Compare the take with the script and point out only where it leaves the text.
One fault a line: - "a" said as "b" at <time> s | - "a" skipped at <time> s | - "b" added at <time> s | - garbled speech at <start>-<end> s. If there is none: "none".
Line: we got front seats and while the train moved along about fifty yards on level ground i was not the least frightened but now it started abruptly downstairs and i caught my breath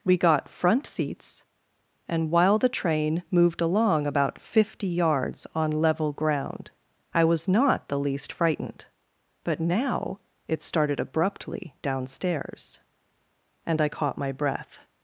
none